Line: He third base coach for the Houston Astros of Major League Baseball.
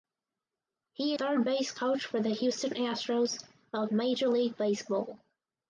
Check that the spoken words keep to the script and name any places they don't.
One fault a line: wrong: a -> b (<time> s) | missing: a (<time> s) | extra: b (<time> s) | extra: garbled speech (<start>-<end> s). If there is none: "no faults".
no faults